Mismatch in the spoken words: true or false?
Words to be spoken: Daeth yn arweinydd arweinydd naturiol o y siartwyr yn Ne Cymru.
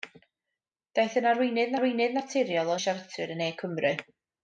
false